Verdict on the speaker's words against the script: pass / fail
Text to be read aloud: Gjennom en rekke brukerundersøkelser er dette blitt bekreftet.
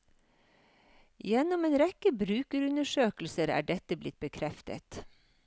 pass